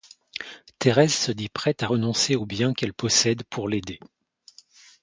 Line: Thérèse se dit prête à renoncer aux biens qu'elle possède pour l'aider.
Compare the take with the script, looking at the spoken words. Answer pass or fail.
pass